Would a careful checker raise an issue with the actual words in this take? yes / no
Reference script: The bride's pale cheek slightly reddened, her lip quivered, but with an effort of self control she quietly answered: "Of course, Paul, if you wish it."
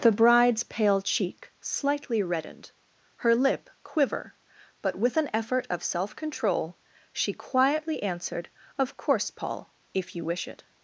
yes